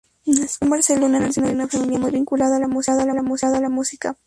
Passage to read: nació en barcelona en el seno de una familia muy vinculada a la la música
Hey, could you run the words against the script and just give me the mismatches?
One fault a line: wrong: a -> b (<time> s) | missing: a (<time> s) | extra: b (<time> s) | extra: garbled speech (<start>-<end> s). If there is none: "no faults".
no faults